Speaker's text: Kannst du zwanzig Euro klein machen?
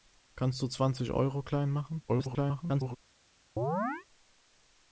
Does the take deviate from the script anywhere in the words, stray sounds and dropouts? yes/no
yes